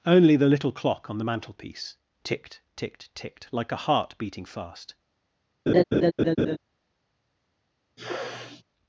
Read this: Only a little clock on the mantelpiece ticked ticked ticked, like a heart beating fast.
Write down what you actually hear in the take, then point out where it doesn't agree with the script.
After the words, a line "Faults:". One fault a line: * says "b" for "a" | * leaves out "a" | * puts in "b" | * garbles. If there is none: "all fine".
Only the little clock on the mantelpiece ticked ticked ticked, like a heart beating fast.
Faults:
* says "the" for "a"